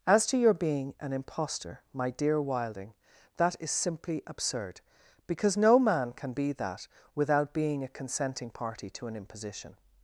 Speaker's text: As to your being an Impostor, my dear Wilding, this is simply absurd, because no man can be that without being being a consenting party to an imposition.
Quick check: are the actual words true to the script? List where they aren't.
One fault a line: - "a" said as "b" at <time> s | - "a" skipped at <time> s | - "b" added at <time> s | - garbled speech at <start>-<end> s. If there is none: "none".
- "this" said as "that" at 3.4 s
- "being" skipped at 7.8 s